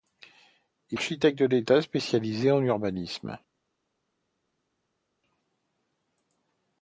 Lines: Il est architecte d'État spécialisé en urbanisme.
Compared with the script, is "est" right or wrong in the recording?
wrong